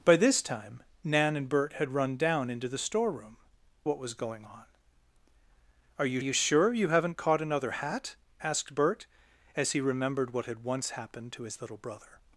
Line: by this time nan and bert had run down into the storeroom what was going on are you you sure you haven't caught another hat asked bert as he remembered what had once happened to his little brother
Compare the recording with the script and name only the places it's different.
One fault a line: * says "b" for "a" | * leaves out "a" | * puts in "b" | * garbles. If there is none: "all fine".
all fine